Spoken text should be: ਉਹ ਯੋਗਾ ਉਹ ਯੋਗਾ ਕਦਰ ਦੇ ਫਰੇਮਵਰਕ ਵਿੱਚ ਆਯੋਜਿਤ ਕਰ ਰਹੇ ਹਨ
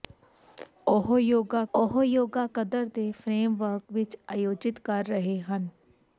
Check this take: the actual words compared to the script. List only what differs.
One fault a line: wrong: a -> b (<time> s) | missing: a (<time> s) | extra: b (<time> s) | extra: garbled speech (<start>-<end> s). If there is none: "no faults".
no faults